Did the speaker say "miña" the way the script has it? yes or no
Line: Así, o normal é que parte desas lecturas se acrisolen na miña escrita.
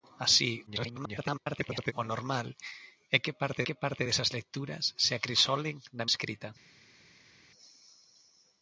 no